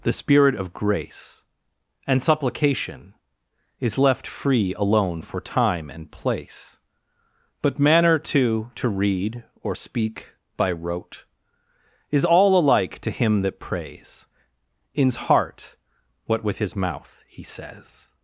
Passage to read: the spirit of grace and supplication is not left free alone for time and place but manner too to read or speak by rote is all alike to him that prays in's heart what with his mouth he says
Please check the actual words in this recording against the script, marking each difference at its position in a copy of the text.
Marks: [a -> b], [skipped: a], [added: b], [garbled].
the spirit of grace and supplication is [skipped: not] left free alone for time and place but manner too to read or speak by rote is all alike to him that prays in's heart what with his mouth he says